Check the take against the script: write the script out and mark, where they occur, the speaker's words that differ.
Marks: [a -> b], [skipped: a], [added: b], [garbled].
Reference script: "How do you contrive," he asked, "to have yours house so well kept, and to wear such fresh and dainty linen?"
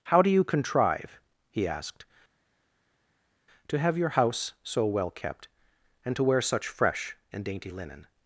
"How do you contrive," he asked, "to have [yours -> your] house so well kept, and to wear such fresh and dainty linen?"